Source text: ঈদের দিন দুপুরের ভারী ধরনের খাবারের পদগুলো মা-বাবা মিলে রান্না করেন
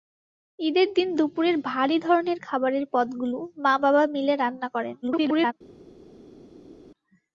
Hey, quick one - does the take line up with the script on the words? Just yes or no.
no